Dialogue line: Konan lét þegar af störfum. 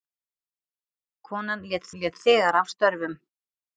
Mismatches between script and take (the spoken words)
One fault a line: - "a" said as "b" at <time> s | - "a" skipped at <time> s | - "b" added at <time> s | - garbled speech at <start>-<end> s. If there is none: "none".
- "lét" added at 2.0 s